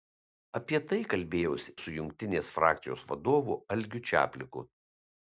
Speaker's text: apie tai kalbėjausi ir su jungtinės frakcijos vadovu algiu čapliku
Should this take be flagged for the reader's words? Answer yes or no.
yes